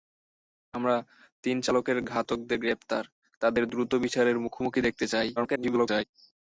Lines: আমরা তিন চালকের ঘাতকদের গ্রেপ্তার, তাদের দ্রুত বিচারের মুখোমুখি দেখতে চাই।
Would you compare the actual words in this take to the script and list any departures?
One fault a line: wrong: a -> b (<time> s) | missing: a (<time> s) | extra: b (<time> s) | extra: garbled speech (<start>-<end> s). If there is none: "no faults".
extra: garbled speech (5.4-6.0 s)